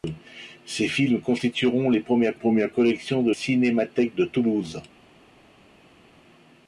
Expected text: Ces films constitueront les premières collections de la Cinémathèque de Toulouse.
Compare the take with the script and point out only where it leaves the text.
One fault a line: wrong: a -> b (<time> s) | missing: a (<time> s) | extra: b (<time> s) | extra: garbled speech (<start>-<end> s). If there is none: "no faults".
extra: premières (2.3 s)
missing: la (3.3 s)